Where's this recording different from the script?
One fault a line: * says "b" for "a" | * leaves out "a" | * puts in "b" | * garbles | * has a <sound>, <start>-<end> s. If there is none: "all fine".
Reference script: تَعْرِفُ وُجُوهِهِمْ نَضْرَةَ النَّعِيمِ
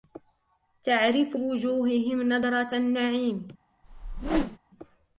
* has a whoosh, 3.8-4.6 s